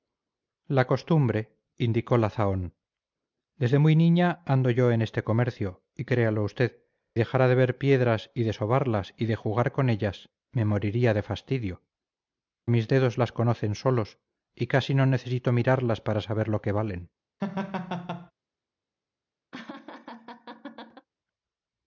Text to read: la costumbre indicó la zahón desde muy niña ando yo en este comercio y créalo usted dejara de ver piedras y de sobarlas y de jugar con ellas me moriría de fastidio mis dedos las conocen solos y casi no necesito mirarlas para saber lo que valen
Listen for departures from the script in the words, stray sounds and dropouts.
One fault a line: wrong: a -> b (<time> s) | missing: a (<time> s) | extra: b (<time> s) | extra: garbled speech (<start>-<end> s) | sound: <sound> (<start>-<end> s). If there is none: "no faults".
sound: laugh (17.4-18.3 s)
sound: laugh (19.5-21.1 s)